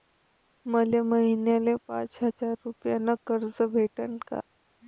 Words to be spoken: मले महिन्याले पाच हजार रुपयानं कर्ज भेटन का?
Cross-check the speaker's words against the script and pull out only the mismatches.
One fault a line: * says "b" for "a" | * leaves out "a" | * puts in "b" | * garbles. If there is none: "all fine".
all fine